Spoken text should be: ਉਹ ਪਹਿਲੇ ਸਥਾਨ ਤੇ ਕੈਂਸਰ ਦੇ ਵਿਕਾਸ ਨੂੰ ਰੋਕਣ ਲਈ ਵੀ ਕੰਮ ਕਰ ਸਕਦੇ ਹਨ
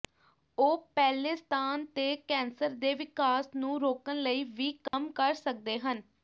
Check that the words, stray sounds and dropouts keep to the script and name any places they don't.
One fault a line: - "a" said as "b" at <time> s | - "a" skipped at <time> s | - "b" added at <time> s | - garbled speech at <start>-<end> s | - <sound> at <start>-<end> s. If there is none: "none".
- dropout at 4.9-4.9 s